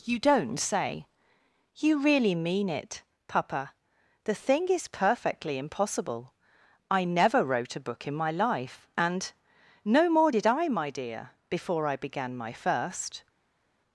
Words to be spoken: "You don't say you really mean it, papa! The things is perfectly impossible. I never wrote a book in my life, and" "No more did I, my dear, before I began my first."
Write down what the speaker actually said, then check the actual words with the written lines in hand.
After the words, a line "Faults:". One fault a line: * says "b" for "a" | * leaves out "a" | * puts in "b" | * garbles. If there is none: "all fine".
"You don't say you really mean it, papa! The thing is perfectly impossible. I never wrote a book in my life, and" "No more did I, my dear, before I began my first."
Faults:
* says "thing" for "things"